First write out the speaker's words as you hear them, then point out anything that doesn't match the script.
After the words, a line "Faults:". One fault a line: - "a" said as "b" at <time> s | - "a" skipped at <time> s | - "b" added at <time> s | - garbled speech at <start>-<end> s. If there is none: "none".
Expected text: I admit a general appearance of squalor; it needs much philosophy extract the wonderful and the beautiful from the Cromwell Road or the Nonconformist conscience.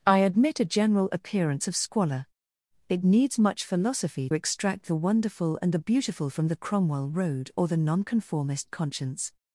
I admit a general appearance of squalor; it needs much philosophy extract the wonderful and the beautiful from the Cromwell Road or the Nonconformist conscience.
Faults:
none